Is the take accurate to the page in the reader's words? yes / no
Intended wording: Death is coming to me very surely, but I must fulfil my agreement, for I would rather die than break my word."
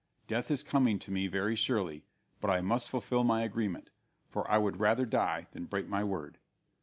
yes